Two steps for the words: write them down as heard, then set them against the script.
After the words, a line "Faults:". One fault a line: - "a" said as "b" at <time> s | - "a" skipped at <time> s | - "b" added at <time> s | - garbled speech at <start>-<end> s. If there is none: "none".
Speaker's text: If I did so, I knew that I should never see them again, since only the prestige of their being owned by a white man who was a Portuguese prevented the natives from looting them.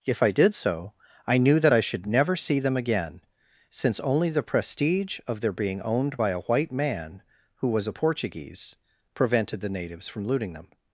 If I did so, I knew that I should never see them again, since only the prestige of their being owned by a white man who was a Portuguese prevented the natives from looting them.
Faults:
none